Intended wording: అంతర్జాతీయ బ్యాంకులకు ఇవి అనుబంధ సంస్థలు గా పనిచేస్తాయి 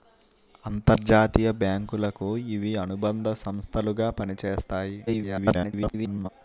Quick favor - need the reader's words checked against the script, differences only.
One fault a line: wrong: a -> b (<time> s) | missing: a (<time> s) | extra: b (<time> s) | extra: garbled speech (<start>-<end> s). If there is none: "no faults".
extra: garbled speech (5.1-6.3 s)